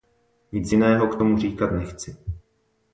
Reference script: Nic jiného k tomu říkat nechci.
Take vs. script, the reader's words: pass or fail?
pass